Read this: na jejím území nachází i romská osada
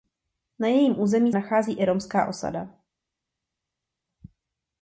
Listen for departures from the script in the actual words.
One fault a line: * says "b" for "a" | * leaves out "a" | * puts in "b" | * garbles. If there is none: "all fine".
all fine